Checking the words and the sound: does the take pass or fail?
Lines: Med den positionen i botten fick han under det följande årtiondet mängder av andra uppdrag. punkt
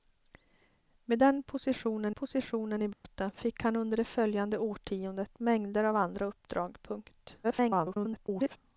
fail